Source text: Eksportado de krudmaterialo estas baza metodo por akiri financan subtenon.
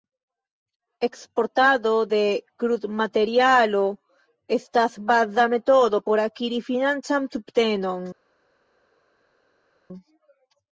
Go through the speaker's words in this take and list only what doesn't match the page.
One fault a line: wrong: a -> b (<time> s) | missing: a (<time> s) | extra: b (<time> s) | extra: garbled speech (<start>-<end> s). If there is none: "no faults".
no faults